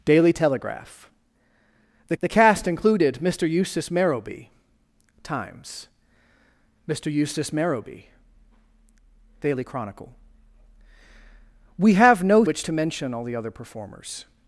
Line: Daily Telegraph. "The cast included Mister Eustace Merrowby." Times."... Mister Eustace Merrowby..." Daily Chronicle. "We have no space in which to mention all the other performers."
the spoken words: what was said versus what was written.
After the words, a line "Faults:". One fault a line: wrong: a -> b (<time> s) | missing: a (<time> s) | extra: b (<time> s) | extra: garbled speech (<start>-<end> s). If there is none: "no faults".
Daily Telegraph. "The the cast included Mister Eustace Merrowby." Times."... Mister Eustace Merrowby..." Daily Chronicle. "We have no which to mention all the other performers."
Faults:
extra: the (2.2 s)
missing: space in (12.4 s)